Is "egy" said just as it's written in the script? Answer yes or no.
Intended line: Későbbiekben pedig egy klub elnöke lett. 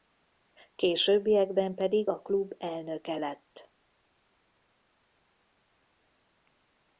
no